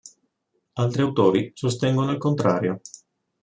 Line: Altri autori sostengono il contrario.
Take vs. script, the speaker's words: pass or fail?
pass